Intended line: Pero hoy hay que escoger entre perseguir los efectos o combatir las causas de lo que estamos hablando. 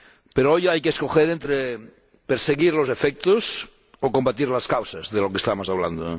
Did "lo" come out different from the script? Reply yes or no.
no